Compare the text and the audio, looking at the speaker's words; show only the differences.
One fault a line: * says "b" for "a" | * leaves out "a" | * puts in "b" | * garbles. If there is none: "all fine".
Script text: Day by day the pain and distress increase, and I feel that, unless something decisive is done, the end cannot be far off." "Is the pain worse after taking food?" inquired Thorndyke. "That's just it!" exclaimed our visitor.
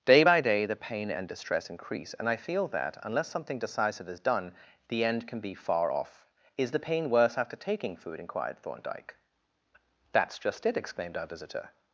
* says "can" for "cannot"